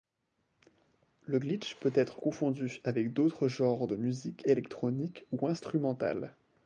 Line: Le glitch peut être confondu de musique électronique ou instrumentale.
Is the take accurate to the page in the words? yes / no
no